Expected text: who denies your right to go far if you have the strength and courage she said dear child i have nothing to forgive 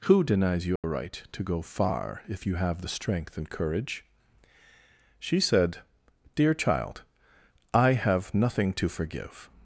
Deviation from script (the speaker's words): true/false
false